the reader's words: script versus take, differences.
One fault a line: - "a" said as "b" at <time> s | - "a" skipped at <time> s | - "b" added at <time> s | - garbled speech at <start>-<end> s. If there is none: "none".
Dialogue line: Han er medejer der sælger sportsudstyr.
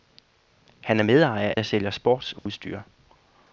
none